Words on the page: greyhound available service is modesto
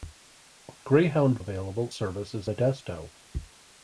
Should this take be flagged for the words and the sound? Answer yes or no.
no